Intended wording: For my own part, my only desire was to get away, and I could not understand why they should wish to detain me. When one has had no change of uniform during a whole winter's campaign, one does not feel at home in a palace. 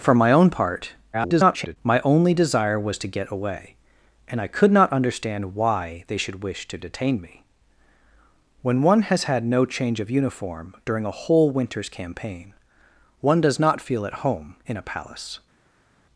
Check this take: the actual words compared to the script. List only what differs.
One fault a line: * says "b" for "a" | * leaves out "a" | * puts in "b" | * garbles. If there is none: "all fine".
* garbles